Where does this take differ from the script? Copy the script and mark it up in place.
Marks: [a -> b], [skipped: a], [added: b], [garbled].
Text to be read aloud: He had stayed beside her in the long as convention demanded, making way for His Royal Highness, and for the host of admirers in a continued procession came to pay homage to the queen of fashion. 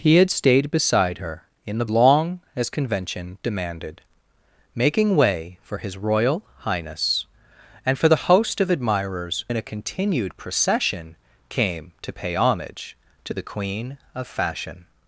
He had stayed beside her in the long as convention demanded, making way for His Royal Highness, and for the host of admirers in a continued procession came to pay homage to the queen of fashion.